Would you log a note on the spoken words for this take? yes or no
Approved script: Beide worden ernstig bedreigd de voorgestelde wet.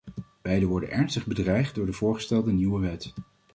yes